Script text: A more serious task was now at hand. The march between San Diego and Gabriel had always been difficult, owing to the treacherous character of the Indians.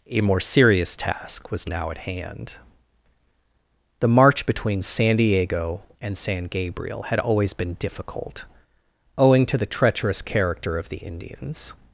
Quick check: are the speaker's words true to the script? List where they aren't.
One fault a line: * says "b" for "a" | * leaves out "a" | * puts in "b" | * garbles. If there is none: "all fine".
* puts in "San"